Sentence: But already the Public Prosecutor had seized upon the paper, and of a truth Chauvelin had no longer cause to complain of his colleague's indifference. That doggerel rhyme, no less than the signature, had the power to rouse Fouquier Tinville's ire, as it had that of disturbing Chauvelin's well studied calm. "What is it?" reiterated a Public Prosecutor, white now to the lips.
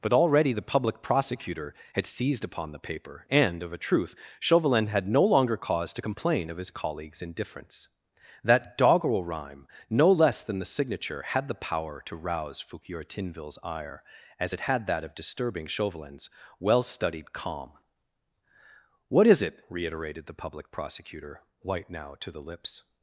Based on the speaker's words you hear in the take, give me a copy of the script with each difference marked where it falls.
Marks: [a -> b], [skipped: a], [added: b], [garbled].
But already the Public Prosecutor had seized upon the paper, and of a truth Chauvelin had no longer cause to complain of his colleague's indifference. That doggerel rhyme, no less than the signature, had the power to rouse Fouquier Tinville's ire, as it had that of disturbing Chauvelin's well studied calm. "What is it?" reiterated [a -> the] Public Prosecutor, white now to the lips.